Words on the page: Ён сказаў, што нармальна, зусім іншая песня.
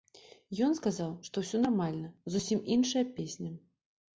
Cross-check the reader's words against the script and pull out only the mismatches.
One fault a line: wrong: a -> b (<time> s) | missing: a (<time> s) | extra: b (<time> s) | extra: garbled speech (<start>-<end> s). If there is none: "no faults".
extra: ўсё (1.5 s)